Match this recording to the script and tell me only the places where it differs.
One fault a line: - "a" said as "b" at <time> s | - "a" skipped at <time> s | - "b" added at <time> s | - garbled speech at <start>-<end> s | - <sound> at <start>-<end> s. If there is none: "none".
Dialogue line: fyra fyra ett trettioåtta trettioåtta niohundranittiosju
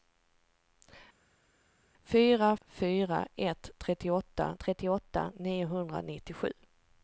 none